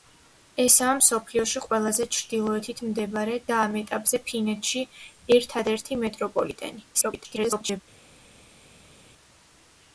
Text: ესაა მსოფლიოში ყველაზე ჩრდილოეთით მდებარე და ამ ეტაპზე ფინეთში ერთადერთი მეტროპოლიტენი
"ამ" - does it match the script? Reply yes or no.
yes